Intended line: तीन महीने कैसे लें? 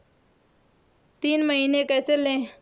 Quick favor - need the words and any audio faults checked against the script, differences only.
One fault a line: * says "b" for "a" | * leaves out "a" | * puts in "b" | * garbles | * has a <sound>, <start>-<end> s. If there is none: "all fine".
all fine